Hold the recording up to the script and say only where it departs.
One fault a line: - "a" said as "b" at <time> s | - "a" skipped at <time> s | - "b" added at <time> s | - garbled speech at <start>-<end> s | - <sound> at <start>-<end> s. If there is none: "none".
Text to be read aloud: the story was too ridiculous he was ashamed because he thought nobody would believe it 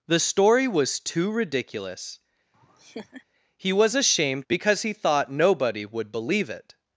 - laugh at 2.5-3.2 s